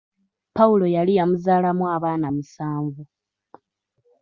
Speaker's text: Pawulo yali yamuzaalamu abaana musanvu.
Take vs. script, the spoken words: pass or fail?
pass